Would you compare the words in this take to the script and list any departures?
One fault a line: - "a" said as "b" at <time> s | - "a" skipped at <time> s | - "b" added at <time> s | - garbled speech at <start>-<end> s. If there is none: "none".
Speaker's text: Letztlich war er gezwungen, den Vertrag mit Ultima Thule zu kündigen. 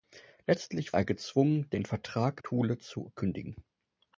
- "war" skipped at 0.9 s
- "mit Ultima" skipped at 2.4 s